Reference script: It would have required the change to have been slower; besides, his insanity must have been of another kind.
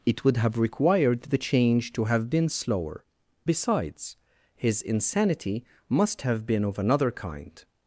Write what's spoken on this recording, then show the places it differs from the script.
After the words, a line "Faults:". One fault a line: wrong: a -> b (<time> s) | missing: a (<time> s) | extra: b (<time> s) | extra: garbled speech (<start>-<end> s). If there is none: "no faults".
It would have required the change to have been slower; besides, his insanity must have been of another kind.
Faults:
no faults